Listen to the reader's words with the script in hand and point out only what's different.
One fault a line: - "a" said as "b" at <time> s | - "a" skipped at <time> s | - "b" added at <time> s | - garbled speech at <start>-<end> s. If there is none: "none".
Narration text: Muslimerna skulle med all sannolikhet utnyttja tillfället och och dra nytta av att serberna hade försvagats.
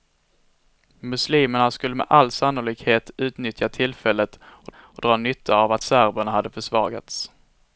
none